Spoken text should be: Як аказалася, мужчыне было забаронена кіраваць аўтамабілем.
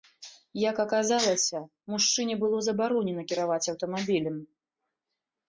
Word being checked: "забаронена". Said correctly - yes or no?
yes